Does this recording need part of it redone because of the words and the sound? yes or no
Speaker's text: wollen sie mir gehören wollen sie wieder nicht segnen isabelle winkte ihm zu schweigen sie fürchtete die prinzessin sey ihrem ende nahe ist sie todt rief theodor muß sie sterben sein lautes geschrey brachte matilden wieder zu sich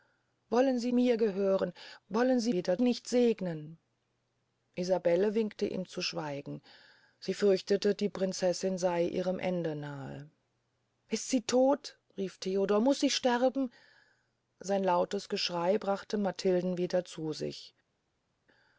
no